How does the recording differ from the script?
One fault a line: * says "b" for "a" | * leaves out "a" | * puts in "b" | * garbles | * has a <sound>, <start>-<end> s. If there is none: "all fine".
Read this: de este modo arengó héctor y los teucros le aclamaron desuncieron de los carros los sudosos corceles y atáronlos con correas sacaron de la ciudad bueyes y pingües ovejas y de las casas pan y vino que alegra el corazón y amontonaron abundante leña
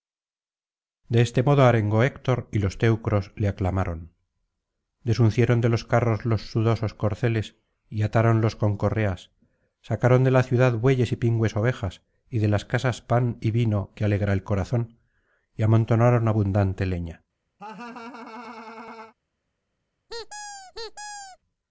* has a laugh, 17.6-19.1 s
* has a squeak, 20.1-21.4 s